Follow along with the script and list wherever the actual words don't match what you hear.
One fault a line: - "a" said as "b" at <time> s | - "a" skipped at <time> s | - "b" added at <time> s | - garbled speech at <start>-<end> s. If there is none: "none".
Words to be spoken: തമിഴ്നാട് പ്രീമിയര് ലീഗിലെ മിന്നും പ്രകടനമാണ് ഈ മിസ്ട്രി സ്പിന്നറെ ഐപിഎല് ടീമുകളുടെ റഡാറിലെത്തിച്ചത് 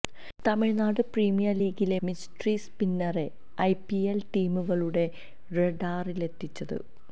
- "മിന്നും പ്രകടനമാണ് ഈ" skipped at 2.0 s